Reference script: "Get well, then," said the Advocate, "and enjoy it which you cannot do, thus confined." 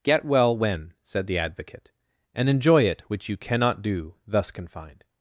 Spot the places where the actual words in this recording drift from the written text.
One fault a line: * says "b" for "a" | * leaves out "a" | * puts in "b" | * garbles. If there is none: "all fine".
* says "when" for "then"